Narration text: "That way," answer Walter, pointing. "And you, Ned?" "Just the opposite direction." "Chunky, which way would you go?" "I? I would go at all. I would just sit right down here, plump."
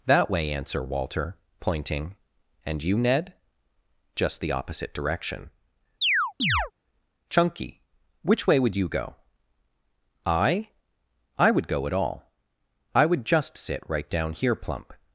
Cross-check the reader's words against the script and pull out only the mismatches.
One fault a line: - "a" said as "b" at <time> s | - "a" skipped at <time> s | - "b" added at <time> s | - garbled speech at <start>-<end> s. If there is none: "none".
none